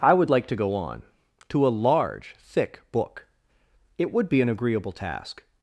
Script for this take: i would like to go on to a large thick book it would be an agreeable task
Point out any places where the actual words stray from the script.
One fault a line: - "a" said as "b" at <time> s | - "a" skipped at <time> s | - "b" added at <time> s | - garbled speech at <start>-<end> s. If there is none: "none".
none